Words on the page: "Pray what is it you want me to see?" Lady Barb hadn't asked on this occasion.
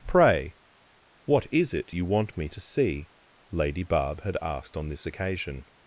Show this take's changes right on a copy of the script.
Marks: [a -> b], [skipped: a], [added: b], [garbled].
"Pray what is it you want me to see?" Lady Barb [hadn't -> had] asked on this occasion.